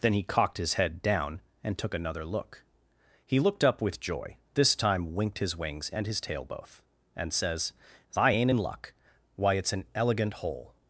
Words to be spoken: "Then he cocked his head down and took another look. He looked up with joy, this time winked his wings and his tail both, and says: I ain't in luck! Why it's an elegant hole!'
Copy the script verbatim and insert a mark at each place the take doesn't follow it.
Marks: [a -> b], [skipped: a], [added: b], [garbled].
"Then he cocked his head down and took another look. He looked up with joy, this time winked his wings and his tail both, and says: I ain't in luck! Why it's an elegant hole!'